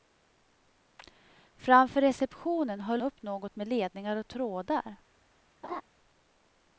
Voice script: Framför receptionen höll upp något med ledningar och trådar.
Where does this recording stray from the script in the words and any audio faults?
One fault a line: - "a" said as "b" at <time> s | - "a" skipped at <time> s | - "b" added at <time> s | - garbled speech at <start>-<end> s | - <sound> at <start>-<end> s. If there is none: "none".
- laugh at 5.6-5.8 s